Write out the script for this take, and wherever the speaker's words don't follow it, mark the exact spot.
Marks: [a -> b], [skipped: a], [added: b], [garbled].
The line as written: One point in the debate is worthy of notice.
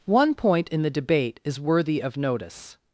One point in the debate is worthy of notice.